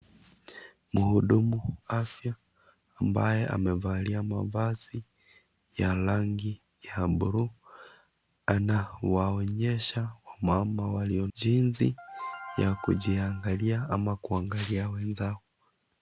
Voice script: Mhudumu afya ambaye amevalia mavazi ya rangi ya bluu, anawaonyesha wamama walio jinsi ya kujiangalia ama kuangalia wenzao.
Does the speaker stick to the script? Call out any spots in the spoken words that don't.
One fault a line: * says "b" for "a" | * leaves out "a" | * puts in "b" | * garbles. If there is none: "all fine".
all fine